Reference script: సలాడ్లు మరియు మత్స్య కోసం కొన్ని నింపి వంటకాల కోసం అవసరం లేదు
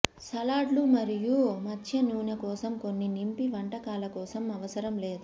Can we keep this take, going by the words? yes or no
no